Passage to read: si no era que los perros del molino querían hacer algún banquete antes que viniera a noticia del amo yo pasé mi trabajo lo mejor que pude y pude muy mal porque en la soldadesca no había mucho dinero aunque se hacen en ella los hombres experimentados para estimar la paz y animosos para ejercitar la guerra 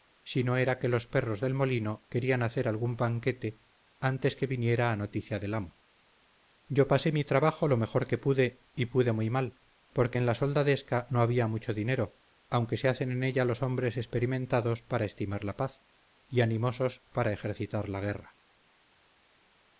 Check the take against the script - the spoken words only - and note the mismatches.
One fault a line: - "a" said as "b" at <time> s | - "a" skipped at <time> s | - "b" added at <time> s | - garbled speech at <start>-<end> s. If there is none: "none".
none